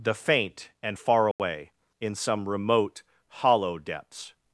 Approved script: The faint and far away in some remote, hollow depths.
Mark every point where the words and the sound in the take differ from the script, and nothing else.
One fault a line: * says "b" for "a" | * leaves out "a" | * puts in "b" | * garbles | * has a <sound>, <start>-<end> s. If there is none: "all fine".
* has a dropout, 1.3-1.4 s